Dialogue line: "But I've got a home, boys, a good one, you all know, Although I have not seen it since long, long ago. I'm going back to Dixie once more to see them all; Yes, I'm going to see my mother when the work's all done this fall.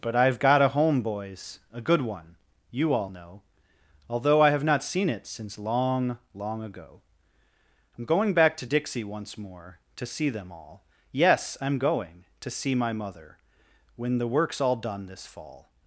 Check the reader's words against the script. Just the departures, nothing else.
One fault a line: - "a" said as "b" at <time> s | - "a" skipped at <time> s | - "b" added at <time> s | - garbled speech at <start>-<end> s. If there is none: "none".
none